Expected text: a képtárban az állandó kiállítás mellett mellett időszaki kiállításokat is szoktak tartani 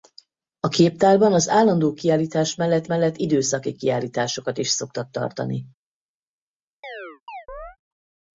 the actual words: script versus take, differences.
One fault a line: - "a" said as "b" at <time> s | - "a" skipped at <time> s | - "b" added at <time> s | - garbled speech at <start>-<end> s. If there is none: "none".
none